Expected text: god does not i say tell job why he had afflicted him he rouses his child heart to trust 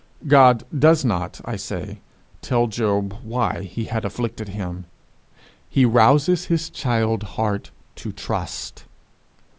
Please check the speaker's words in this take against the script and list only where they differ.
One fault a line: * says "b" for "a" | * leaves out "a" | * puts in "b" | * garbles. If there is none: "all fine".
all fine